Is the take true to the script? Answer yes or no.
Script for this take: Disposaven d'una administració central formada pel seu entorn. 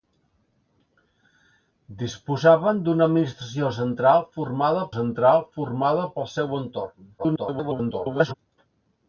no